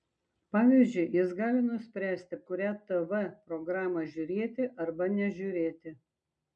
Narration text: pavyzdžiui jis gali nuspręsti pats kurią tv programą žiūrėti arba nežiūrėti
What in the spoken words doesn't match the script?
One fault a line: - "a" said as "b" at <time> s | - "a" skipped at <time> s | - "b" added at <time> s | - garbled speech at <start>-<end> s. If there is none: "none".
- "pats" skipped at 2.4 s